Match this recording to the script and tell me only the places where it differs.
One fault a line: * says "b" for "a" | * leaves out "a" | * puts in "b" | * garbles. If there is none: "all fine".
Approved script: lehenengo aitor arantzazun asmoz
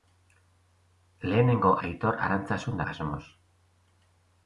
all fine